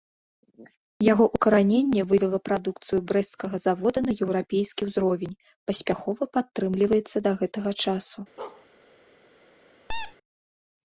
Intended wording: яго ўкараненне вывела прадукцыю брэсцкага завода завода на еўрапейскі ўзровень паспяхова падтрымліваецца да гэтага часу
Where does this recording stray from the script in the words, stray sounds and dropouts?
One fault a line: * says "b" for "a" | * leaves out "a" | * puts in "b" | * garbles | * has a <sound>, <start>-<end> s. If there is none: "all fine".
* leaves out "завода"
* has a bark, 8.4-8.7 s
* has a squeak, 9.9-10.2 s